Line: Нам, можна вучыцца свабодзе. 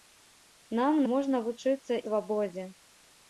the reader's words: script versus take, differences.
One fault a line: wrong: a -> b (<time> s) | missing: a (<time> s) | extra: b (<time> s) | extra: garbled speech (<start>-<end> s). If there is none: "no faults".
no faults